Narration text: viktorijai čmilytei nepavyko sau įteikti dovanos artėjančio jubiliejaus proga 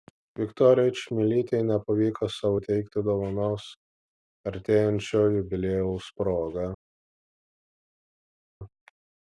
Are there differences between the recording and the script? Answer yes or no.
no